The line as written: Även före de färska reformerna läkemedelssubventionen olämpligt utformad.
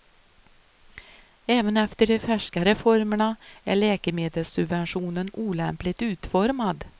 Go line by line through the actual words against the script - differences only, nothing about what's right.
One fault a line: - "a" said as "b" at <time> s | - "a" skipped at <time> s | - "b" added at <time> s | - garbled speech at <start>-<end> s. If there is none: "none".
- "före" said as "efter" at 1.8 s
- "är" added at 3.6 s